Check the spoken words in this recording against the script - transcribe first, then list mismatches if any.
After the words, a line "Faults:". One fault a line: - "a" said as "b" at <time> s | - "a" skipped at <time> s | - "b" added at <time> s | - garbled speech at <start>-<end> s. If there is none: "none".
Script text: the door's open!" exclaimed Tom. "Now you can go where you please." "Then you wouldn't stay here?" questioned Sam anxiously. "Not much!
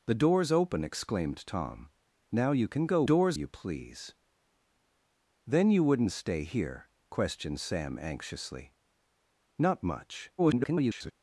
the door's open!" exclaimed Tom. "Now you can go door's you please." "Then you wouldn't stay here?" questioned Sam anxiously. "Not much! [garbled]
Faults:
- "where" said as "door's" at 3.0 s
- garbled speech at 10.4-11.1 s